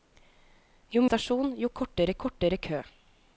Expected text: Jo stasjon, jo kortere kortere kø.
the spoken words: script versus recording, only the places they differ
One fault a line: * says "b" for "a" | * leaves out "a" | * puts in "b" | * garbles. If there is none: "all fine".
all fine